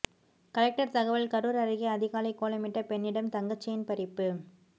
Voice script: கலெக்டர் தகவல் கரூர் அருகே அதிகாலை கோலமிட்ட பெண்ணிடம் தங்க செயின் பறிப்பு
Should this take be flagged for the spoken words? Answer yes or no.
no